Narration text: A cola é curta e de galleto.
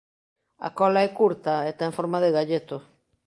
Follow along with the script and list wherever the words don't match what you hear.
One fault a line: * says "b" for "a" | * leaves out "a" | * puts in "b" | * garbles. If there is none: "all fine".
* puts in "ten forma"